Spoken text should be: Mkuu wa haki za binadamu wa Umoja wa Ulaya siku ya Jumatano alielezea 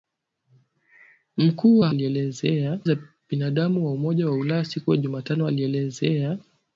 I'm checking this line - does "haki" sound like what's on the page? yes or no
no